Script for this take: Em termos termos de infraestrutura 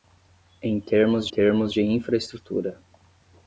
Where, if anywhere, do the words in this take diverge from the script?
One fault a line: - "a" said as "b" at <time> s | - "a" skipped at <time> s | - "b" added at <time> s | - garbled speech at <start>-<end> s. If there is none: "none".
none